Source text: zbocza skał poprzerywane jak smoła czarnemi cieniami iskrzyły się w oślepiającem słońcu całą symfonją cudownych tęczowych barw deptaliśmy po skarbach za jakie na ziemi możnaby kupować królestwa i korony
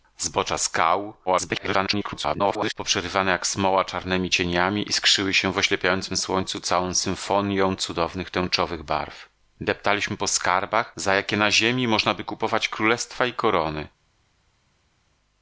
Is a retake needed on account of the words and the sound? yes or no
yes